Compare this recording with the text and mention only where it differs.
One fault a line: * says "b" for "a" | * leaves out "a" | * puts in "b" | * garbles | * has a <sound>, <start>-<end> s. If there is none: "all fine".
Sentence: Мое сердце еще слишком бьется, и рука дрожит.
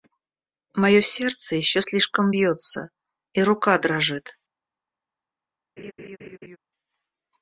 * has a laugh, 5.8-6.6 s